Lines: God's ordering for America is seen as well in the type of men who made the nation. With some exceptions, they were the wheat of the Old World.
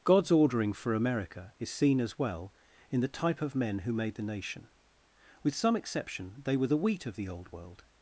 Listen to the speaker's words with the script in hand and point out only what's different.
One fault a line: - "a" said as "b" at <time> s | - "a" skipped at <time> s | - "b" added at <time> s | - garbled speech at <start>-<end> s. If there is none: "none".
- "exceptions" said as "exception" at 5.8 s